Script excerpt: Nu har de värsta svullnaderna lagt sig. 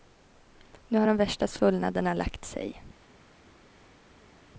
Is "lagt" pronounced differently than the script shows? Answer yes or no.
no